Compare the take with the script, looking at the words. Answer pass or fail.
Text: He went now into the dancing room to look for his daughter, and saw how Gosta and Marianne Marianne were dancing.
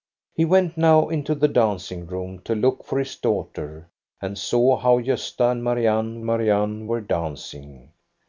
pass